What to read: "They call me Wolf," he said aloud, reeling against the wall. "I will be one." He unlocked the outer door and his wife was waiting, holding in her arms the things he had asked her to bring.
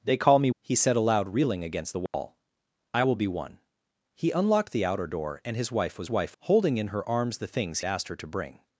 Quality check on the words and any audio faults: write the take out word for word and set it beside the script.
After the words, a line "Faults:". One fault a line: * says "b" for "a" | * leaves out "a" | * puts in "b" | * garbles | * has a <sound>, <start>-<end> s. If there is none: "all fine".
"They call me," He said aloud, reeling against the wall. "I will be one." He unlocked the outer door and his wife was wife, holding in her arms the things asked her to bring.
Faults:
* leaves out "Wolf"
* has a dropout, 2.1-2.1 s
* says "wife" for "waiting"
* leaves out "he had"